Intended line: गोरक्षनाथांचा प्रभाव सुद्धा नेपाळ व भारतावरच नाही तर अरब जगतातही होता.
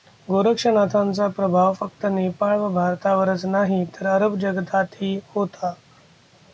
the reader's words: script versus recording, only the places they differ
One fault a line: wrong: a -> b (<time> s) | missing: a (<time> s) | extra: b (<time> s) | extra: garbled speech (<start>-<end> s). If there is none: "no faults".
wrong: सुद्धा -> फक्त (1.7 s)